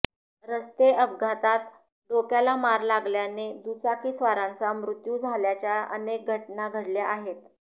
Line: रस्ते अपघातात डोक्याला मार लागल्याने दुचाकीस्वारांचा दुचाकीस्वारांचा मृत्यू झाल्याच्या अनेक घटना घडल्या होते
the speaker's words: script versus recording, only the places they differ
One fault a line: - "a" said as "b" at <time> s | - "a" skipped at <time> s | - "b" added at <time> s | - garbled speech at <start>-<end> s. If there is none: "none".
- "दुचाकीस्वारांचा" skipped at 4.7 s
- "होते" said as "आहेत" at 7.1 s